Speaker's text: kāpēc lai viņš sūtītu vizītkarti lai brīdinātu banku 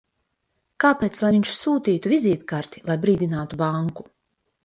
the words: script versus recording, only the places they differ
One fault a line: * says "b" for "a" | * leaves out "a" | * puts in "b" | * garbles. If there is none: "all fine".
all fine